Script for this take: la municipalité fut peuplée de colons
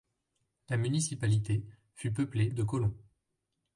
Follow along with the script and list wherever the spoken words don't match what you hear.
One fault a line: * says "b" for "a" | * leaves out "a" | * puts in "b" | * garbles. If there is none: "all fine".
all fine